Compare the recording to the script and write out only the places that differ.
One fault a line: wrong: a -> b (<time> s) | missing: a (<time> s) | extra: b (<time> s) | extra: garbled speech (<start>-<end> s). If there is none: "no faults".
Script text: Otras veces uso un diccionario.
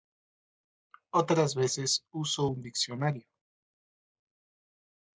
no faults